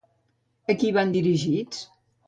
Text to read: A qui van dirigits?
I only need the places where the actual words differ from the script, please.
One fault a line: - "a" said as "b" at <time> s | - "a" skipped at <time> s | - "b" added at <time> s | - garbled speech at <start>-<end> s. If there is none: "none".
none